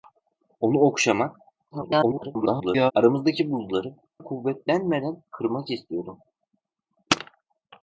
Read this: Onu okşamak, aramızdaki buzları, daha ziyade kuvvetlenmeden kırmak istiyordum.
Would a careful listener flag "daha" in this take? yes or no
yes